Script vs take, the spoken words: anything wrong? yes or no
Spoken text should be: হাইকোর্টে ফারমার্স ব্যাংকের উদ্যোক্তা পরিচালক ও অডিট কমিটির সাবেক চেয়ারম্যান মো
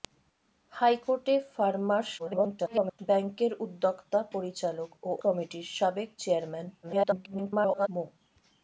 yes